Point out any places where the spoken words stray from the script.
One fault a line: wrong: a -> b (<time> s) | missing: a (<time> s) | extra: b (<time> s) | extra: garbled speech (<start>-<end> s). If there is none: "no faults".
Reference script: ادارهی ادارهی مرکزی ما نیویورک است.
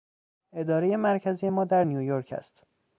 missing: ادارهی (0.9 s)
extra: در (1.7 s)